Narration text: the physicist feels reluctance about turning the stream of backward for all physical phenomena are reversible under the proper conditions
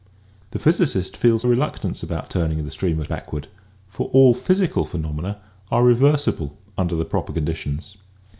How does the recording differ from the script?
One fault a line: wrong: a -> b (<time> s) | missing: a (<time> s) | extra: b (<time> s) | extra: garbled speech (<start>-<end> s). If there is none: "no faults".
no faults